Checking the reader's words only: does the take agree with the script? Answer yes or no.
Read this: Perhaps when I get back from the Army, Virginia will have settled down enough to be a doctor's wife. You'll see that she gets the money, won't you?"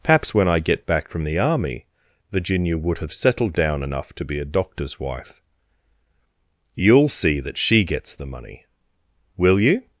no